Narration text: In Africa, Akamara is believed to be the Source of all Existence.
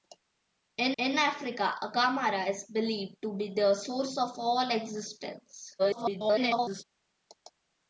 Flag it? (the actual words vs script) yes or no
yes